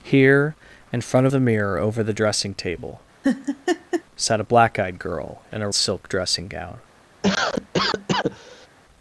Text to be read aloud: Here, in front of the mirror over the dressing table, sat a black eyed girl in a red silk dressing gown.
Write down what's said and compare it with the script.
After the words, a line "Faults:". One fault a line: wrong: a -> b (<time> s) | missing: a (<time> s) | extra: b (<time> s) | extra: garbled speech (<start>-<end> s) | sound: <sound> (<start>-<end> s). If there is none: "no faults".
Here, in front the mirror over the dressing table, sat a black eyed girl in a silk dressing gown.
Faults:
missing: of (1.3 s)
sound: laugh (3.2-4.0 s)
missing: red (5.7 s)
sound: cough (7.2-8.7 s)